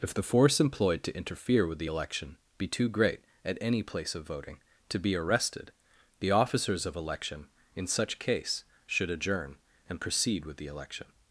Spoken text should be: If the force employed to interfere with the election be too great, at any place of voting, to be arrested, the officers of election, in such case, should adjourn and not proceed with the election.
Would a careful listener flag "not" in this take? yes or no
yes